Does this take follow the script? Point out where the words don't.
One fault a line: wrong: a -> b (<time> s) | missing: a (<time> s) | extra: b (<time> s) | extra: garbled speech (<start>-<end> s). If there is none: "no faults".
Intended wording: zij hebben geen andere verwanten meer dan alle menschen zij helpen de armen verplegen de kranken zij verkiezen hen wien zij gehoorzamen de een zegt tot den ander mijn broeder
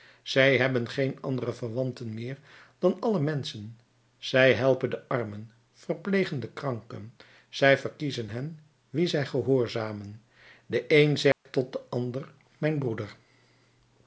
no faults